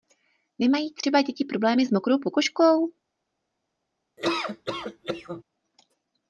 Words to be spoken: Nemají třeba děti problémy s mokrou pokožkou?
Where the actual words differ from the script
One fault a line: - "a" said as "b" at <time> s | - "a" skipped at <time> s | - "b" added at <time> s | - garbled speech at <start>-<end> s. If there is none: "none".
none